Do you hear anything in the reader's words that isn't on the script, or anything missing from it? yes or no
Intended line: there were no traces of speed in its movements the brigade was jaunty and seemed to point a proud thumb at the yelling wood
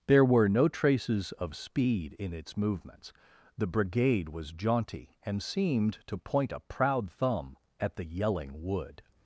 no